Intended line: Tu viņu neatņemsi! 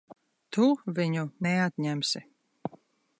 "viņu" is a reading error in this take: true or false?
false